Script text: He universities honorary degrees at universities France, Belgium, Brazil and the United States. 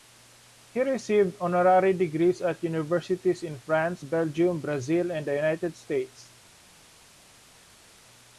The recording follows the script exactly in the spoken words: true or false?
false